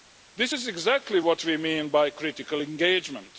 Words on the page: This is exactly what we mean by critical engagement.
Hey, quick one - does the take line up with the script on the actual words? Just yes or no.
yes